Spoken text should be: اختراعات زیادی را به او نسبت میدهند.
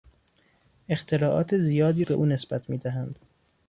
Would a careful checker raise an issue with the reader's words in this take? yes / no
yes